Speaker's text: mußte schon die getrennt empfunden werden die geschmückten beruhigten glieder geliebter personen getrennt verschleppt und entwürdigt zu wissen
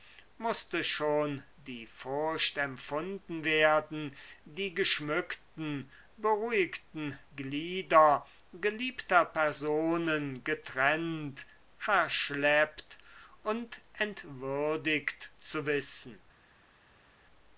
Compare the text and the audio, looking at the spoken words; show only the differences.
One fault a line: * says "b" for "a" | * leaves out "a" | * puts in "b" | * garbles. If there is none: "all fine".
* says "furcht" for "getrennt"